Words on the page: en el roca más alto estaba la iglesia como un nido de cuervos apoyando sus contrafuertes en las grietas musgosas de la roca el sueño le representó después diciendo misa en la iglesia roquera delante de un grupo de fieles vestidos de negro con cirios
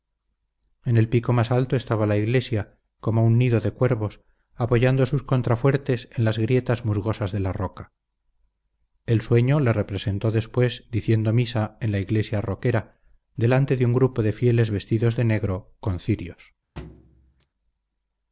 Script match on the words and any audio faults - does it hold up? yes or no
no